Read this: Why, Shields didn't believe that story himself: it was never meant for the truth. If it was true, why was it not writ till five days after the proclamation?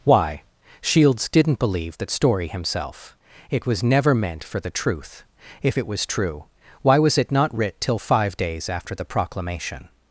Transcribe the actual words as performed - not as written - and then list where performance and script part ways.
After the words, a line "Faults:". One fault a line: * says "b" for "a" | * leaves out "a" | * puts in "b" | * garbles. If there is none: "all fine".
Why, Shields didn't believe that story himself: it was never meant for the truth. If it was true, why was it not writ till five days after the proclamation?
Faults:
all fine